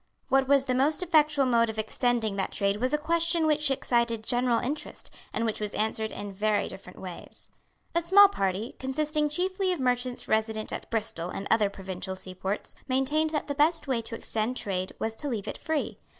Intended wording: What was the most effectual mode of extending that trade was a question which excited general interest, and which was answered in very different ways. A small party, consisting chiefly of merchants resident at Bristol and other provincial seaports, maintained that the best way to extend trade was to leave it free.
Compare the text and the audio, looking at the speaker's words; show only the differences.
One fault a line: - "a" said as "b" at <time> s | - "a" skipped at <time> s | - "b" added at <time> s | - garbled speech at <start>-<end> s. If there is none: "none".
none